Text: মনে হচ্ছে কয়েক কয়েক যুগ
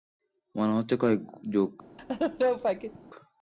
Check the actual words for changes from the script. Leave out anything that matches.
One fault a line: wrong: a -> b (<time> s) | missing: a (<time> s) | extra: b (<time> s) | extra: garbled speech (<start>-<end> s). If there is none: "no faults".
missing: কয়েক (1.2 s)